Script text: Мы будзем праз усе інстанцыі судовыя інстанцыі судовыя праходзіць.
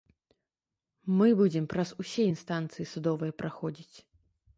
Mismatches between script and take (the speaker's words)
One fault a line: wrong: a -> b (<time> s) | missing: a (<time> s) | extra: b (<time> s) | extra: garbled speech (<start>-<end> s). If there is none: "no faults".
missing: інстанцыі судовыя (3.3 s)